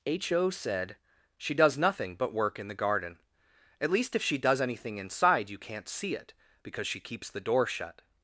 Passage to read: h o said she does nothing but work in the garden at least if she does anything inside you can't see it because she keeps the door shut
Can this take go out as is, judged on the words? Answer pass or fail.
pass